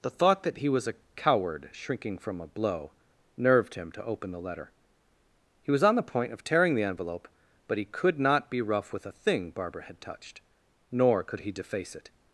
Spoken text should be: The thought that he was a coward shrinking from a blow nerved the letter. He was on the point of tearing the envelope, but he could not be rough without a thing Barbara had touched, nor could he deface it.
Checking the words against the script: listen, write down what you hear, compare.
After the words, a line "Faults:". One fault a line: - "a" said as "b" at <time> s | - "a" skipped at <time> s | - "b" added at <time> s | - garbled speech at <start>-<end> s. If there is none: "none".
The thought that he was a coward shrinking from a blow nerved him to open the letter. He was on the point of tearing the envelope, but he could not be rough with a thing Barbara had touched, nor could he deface it.
Faults:
- "him to open" added at 3.7 s
- "without" said as "with" at 8.9 s